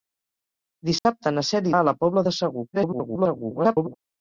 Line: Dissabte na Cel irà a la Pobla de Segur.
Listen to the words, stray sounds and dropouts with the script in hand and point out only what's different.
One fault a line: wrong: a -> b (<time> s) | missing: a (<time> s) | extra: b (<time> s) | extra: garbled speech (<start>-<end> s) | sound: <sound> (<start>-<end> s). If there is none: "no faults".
sound: dropout (1.0-1.1 s)
missing: irà (1.7 s)
extra: garbled speech (2.7-3.9 s)